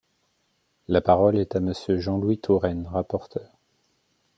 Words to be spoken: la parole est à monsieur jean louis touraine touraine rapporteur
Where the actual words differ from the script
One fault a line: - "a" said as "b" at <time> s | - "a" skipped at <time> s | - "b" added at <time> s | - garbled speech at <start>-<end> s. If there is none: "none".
- "touraine" skipped at 2.9 s